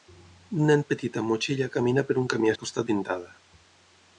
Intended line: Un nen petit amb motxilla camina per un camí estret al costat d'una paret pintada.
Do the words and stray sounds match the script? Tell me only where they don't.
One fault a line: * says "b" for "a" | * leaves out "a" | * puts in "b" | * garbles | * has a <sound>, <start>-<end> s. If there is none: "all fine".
* leaves out "estret"
* leaves out "d'una paret"